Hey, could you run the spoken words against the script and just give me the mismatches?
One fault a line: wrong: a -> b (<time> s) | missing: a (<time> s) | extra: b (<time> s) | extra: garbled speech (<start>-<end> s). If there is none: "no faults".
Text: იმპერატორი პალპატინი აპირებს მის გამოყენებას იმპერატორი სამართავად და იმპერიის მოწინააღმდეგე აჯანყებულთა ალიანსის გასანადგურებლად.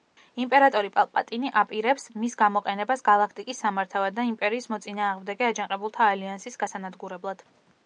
wrong: იმპერატორი -> გალაქტიკის (3.1 s)